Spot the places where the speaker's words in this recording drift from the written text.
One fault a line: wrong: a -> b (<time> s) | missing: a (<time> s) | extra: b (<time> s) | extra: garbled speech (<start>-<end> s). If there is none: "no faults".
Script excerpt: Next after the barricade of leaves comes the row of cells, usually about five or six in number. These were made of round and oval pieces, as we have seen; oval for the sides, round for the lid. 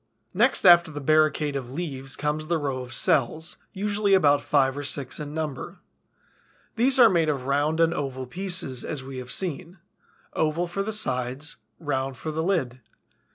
wrong: were -> are (7.0 s)